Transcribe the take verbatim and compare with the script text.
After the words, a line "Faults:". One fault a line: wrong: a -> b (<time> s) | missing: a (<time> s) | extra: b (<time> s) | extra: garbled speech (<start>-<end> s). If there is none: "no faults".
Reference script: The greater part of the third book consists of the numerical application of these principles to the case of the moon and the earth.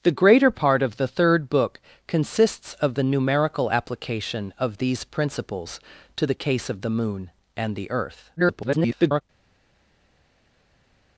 The greater part of the third book consists of the numerical application of these principles to the case of the moon and the earth. [garbled]
Faults:
extra: garbled speech (8.4-9.2 s)